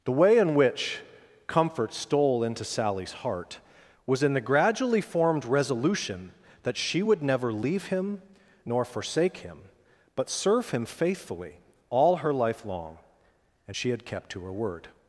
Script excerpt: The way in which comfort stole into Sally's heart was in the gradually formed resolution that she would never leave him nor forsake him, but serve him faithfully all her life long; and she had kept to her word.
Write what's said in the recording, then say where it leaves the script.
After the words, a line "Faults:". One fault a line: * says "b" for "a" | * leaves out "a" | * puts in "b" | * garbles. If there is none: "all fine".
The way in which comfort stole into Sally's heart was in the gradually formed resolution that she would never leave him nor forsake him, but serve him faithfully all her life long; and she had kept to her word.
Faults:
all fine